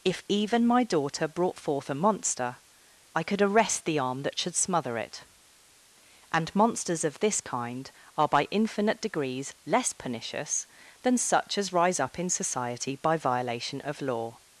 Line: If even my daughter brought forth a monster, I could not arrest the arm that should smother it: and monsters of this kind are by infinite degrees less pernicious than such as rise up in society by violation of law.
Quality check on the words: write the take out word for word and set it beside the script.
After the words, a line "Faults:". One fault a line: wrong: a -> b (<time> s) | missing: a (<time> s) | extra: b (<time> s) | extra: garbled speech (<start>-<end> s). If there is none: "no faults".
If even my daughter brought forth a monster, I could arrest the arm that should smother it: and monsters of this kind are by infinite degrees less pernicious than such as rise up in society by violation of law.
Faults:
missing: not (3.4 s)